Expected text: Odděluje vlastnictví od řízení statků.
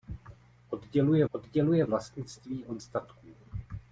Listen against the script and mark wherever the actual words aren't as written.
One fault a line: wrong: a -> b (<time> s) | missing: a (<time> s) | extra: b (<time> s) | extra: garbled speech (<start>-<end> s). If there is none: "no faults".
extra: odděluje (1.3 s)
missing: řízení (2.8 s)